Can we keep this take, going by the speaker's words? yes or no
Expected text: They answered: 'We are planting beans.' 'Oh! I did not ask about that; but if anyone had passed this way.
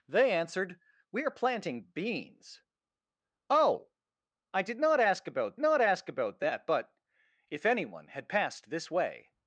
no